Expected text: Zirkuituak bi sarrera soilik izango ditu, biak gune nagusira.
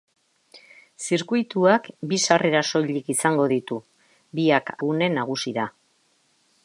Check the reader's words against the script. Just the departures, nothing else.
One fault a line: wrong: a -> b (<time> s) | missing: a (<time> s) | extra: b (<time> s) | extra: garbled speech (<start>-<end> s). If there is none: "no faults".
no faults